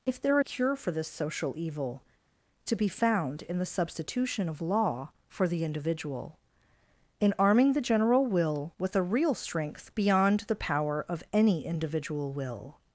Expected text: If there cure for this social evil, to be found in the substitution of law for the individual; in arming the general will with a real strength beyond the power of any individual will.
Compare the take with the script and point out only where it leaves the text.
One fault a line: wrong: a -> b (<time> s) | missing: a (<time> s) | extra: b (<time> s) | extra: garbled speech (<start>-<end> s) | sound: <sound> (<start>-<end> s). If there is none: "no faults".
no faults